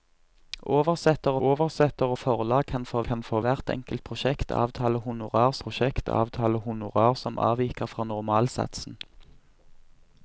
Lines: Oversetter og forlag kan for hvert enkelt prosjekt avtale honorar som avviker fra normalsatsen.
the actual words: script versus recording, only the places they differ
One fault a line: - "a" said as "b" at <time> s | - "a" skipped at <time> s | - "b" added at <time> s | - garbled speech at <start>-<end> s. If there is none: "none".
- "oversetter" added at 1.5 s
- "kan for" added at 3.1 s
- "prosjekt avtale honorar" added at 5.6 s